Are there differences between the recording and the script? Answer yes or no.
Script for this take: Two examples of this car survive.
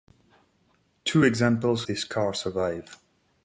yes